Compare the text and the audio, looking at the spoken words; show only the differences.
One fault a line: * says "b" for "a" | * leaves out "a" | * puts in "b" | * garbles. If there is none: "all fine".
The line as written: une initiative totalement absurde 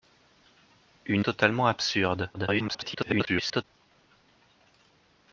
* leaves out "initiative"
* garbles